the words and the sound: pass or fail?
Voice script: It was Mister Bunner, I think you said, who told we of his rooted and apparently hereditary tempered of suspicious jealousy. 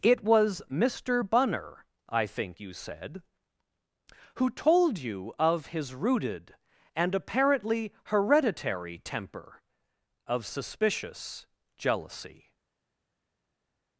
fail